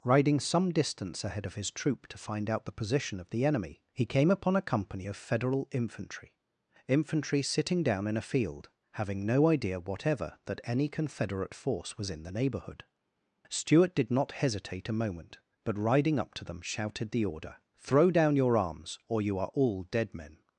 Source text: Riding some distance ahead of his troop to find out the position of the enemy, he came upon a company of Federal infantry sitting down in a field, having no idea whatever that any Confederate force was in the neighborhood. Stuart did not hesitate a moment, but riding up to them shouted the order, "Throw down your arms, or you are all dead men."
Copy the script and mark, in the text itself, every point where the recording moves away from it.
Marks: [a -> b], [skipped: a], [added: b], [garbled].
Riding some distance ahead of his troop to find out the position of the enemy, he came upon a company of Federal infantry [added: infantry] sitting down in a field, having no idea whatever that any Confederate force was in the neighborhood. Stuart did not hesitate a moment, but riding up to them shouted the order, "Throw down your arms, or you are all dead men."